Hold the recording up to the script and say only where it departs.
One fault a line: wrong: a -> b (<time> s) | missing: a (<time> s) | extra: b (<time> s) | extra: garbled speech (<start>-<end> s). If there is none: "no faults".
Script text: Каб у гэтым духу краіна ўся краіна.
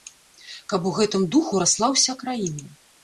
wrong: краіна -> расла (1.6 s)